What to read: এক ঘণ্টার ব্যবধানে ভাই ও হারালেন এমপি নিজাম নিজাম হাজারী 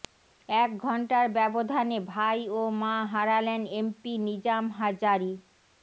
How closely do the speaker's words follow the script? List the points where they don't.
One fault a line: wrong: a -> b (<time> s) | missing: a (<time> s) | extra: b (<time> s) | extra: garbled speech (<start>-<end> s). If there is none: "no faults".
extra: মা (2.8 s)
missing: নিজাম (4.6 s)